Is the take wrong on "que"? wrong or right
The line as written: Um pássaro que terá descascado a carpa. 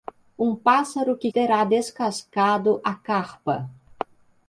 right